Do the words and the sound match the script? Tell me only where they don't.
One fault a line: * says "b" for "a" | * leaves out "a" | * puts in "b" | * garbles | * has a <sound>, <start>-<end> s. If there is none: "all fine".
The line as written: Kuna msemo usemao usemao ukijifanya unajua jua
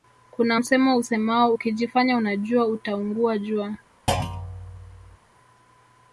* leaves out "usemao"
* puts in "utaungua"
* has a thud, 4.1-5.2 s